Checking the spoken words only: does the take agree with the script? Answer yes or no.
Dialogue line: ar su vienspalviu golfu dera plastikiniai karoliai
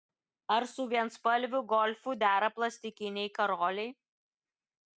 yes